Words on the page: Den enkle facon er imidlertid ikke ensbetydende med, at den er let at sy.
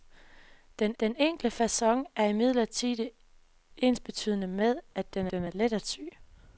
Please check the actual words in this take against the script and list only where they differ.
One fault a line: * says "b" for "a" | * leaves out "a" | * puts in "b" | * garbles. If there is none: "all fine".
* puts in "den"
* leaves out "ikke"
* puts in "den"